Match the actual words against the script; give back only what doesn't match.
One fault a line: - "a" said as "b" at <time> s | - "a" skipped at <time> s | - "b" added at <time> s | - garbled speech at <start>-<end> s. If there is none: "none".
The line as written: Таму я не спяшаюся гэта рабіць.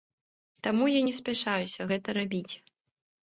none